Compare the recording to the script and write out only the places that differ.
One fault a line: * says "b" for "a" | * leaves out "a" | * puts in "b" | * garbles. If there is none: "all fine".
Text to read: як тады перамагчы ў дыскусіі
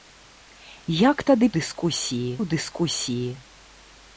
* says "дыскусіі" for "перамагчы"